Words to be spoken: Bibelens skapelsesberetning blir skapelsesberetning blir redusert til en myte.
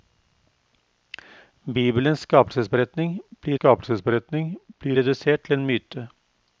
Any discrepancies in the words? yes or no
no